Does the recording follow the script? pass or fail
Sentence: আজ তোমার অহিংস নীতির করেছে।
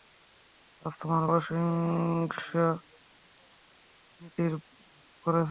pass